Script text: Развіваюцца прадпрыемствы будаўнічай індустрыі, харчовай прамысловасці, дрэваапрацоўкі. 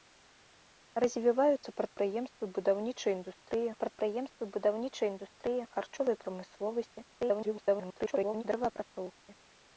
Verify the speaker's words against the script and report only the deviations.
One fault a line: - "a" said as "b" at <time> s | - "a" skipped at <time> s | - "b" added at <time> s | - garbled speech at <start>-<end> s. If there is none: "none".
- "прадпрыемствы будаўнічай індустрыі" added at 3.9 s
- garbled speech at 7.1-8.4 s